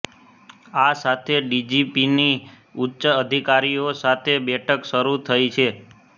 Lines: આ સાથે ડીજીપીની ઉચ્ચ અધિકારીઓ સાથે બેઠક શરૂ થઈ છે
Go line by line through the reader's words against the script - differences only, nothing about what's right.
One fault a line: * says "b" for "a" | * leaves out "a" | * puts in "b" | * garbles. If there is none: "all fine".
all fine